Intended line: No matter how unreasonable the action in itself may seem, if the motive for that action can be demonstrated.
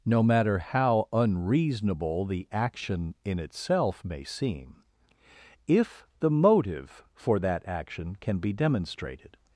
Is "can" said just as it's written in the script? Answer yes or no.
yes